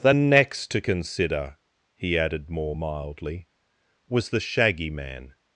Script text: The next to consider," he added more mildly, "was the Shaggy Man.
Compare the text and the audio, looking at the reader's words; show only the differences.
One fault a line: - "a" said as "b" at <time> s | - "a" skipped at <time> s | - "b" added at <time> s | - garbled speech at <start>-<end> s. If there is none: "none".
none